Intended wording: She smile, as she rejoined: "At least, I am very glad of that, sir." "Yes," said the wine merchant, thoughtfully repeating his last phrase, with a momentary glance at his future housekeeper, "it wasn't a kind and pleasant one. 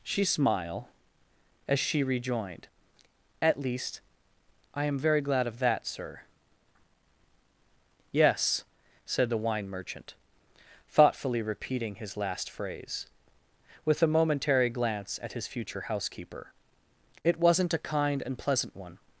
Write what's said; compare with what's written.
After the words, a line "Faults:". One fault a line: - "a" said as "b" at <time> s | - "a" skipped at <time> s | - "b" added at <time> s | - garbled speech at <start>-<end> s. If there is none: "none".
She smile, as she rejoined: "At least, I am very glad of that, sir." "Yes," said the wine merchant, thoughtfully repeating his last phrase, with a momentary glance at his future housekeeper, "it wasn't a kind and pleasant one.
Faults:
none